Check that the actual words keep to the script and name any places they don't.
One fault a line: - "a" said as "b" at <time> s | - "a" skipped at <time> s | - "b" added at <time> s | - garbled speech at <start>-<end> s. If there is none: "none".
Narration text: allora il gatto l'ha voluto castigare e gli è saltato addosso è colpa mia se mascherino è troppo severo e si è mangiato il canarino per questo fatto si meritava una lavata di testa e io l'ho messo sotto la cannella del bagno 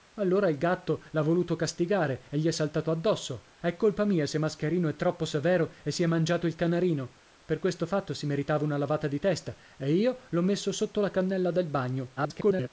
- garbled speech at 12.2-12.7 s